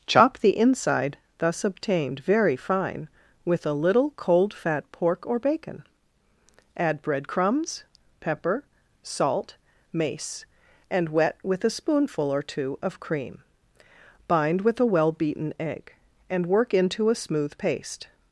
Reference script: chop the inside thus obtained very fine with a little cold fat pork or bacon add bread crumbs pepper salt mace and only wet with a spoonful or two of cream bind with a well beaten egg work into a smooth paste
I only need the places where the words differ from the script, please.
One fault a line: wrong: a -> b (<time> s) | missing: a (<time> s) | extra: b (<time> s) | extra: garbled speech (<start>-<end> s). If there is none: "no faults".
missing: only (11.1 s)
extra: and (16.3 s)